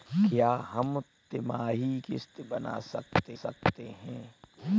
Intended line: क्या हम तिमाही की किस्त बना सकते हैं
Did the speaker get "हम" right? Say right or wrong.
right